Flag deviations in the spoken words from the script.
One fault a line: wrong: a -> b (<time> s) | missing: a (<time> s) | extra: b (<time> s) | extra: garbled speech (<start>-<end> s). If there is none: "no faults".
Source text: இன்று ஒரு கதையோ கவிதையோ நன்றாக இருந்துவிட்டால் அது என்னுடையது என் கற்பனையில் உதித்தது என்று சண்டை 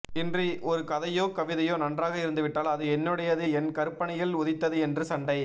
no faults